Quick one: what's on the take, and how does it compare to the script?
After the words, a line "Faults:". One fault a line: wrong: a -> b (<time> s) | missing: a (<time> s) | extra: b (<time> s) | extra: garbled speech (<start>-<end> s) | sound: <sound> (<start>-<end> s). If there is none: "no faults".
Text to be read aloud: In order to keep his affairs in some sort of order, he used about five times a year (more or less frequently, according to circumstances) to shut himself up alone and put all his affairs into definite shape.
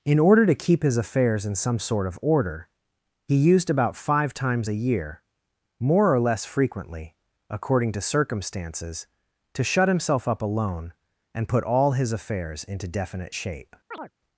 In order to keep his affairs in some sort of order, he used about five times a year (more or less frequently, according to circumstances) to shut himself up alone and put all his affairs into definite shape.
Faults:
sound: chirp (13.9-14.1 s)